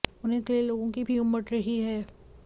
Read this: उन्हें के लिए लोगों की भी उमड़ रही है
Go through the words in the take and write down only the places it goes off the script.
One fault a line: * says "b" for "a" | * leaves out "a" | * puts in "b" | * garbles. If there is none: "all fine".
all fine